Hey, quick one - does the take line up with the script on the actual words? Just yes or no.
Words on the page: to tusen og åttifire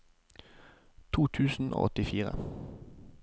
yes